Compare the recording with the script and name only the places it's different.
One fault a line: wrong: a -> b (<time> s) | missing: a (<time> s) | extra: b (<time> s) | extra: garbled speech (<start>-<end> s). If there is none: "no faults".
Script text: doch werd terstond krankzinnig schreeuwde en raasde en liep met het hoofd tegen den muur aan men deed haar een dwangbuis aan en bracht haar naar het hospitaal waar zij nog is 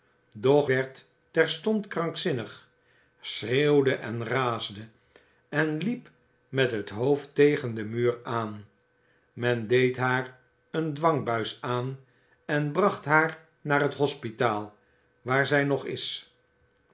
no faults